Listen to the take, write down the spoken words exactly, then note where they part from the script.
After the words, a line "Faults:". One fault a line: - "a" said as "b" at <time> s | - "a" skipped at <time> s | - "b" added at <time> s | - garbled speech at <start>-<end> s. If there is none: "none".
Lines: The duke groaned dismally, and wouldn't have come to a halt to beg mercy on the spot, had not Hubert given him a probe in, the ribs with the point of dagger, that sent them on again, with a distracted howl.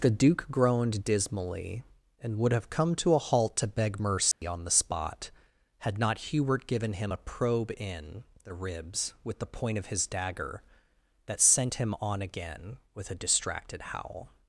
The duke groaned dismally, and would have come to a halt to beg mercy on the spot, had not Hubert given him a probe in, the ribs with the point of his dagger, that sent him on again, with a distracted howl.
Faults:
- "wouldn't" said as "would" at 2.4 s
- "his" added at 9.9 s
- "them" said as "him" at 11.7 s